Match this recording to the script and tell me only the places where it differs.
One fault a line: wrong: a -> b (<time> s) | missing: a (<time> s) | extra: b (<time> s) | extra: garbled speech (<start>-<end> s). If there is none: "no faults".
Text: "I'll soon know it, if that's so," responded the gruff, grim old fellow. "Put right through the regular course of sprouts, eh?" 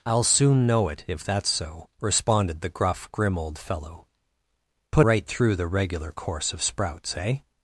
no faults